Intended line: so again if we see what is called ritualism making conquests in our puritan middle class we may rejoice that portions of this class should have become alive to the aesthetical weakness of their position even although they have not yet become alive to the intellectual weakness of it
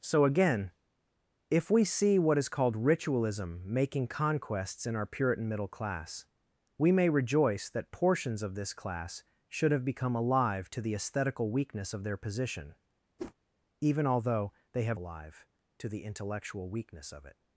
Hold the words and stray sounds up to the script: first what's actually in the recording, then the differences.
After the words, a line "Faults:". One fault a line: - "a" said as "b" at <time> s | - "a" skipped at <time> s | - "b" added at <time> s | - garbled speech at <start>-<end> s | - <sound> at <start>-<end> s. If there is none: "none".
so again if we see what is called ritualism making conquests in our puritan middle class we may rejoice that portions of this class should have become alive to the aesthetical weakness of their position even although they have alive to the intellectual weakness of it
Faults:
- whoosh at 13.2-13.3 s
- "not yet become" skipped at 15.0 s